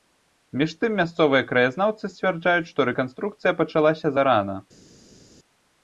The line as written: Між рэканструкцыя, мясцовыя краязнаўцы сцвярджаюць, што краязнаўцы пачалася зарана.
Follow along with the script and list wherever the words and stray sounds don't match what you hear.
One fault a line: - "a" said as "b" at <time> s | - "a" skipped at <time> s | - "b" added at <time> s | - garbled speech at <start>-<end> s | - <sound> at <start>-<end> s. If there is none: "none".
- "рэканструкцыя" said as "тым" at 0.8 s
- "краязнаўцы" said as "рэканструкцыя" at 2.9 s